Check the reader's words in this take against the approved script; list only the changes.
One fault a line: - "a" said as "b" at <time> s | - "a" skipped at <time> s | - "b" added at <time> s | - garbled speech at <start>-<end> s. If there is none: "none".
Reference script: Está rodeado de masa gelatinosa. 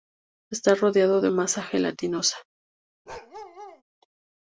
none